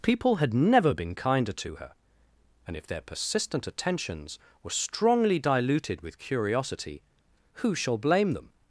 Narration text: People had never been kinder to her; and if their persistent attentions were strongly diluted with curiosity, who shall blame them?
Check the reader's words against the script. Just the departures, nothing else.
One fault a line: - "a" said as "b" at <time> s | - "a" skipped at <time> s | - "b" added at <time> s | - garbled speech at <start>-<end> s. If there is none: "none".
none